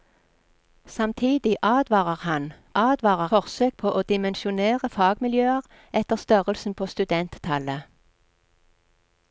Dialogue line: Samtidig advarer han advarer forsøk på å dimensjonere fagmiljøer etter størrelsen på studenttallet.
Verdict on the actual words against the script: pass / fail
pass